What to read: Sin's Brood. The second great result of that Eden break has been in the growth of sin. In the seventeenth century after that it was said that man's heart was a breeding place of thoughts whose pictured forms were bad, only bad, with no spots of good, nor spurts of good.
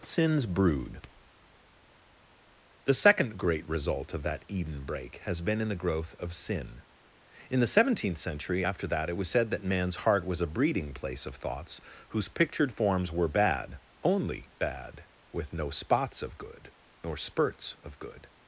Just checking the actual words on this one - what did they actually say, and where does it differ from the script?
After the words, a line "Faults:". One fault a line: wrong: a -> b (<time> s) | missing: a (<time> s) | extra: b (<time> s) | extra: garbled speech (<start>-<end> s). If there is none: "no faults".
Sin's Brood. The second great result of that Eden break has been in the growth of sin. In the seventeenth century after that it was said that man's heart was a breeding place of thoughts whose pictured forms were bad, only bad, with no spots of good, nor spurts of good.
Faults:
no faults